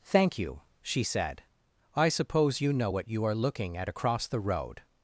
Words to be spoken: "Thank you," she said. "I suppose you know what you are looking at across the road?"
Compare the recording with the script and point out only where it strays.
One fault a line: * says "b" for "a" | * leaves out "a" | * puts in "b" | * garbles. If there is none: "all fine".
all fine